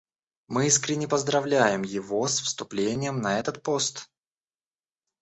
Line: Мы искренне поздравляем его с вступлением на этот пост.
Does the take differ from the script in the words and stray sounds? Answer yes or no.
no